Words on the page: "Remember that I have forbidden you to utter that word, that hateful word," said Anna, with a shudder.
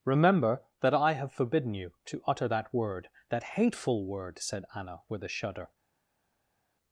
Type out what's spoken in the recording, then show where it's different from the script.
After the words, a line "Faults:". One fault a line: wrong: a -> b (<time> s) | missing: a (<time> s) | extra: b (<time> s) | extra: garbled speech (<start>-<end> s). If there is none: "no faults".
"Remember that I have forbidden you to utter that word, that hateful word," said Anna, with a shudder.
Faults:
no faults